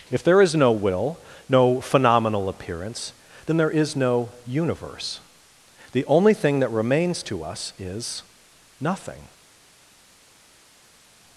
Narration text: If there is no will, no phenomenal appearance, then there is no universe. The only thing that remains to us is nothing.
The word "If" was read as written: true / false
true